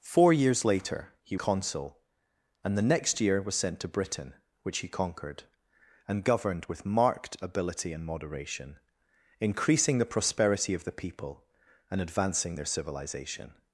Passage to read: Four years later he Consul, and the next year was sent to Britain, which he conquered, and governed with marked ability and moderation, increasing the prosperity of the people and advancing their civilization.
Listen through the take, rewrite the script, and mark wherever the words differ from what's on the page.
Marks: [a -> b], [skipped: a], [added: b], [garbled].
Four years later he Consul, and the next year was sent to Britain, which he conquered, and governed with marked ability and moderation, increasing the prosperity of the people and advancing their civilization.